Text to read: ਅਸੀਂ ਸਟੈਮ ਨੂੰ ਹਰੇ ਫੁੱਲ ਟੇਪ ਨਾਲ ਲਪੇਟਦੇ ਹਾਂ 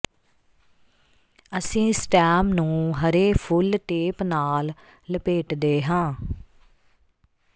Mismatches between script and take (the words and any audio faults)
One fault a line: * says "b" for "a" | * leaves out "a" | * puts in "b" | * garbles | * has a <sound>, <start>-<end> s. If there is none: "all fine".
all fine